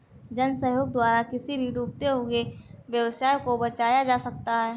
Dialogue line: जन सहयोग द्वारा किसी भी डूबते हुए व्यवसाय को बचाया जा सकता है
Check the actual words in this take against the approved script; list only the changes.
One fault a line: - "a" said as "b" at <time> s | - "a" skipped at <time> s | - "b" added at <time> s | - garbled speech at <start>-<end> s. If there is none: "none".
none